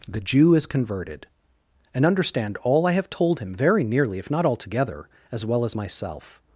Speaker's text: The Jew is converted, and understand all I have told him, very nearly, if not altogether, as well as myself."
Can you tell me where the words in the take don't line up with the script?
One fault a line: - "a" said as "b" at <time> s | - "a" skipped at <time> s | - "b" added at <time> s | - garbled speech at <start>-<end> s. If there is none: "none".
none